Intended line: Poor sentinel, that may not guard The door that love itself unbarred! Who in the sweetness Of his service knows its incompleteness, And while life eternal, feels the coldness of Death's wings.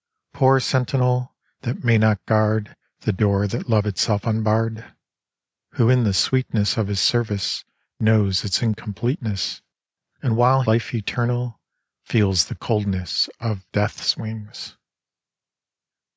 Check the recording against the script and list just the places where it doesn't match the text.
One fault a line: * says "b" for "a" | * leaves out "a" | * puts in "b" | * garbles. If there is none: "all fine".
all fine